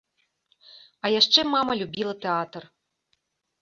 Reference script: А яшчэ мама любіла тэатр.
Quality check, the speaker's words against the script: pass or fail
pass